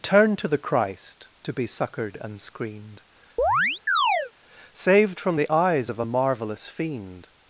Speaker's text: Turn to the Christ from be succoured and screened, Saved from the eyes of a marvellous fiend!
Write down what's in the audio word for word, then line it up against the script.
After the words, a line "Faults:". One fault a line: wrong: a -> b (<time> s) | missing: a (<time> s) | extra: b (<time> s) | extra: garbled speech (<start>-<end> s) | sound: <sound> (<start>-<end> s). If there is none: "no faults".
Turn to the Christ to be succoured and screened, Saved from the eyes of a marvellous fiend!
Faults:
wrong: from -> to (1.4 s)
sound: chirp (3.4-4.3 s)